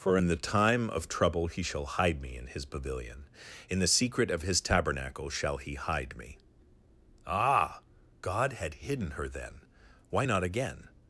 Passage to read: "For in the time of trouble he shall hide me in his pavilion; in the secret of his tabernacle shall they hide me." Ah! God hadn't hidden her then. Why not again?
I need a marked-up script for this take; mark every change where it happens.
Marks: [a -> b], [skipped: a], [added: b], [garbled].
"For in the time of trouble he shall hide me in his pavilion; in the secret of his tabernacle shall [they -> he] hide me." Ah! God [hadn't -> had] hidden her then. Why not again?